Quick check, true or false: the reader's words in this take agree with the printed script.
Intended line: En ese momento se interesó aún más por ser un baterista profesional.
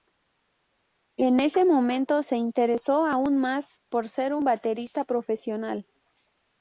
true